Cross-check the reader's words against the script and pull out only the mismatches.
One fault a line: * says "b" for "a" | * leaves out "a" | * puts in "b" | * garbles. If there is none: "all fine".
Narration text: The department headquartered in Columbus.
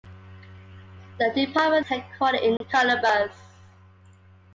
all fine